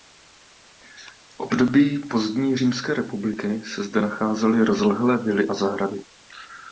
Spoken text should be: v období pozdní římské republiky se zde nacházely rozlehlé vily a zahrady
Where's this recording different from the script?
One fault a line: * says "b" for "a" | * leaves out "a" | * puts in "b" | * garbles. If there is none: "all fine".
all fine